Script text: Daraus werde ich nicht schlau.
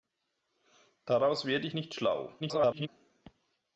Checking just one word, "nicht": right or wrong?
right